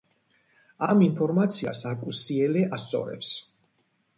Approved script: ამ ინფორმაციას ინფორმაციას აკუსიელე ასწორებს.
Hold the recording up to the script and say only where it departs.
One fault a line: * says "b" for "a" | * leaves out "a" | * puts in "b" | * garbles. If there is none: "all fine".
* leaves out "ინფორმაციას"